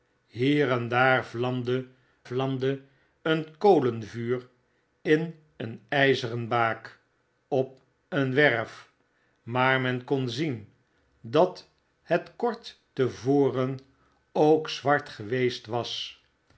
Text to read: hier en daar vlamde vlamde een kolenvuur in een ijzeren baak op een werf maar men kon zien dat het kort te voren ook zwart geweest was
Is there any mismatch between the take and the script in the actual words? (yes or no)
no